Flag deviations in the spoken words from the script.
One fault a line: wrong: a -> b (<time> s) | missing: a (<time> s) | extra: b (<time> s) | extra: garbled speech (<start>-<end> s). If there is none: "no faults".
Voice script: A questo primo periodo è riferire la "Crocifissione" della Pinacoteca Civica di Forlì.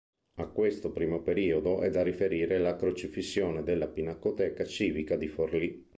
extra: da (1.9 s)